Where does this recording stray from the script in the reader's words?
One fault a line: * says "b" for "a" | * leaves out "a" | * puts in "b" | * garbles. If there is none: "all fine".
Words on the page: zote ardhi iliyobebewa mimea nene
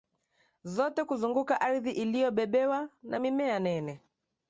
* puts in "kuzunguka"
* puts in "na"